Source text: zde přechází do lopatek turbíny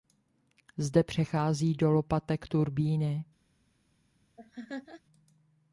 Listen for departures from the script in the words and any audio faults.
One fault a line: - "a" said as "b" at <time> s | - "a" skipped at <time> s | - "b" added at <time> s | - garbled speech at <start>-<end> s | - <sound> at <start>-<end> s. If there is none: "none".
- laugh at 4.4-5.0 s